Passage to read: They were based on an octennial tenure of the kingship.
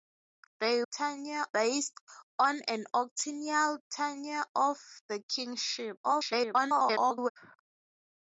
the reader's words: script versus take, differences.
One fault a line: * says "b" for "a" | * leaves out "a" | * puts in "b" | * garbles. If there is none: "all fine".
* says "tenure" for "were"
* garbles